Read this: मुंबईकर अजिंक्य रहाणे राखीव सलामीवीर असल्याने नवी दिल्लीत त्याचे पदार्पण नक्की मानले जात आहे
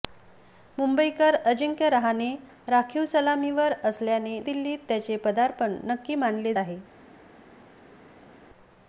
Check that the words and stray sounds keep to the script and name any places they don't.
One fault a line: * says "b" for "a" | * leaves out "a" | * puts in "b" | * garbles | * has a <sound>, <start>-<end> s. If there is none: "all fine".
* leaves out "नवी"
* leaves out "जात"